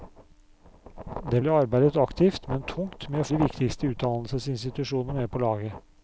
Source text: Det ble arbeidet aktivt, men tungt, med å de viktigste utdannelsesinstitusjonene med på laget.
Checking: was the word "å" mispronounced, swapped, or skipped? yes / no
no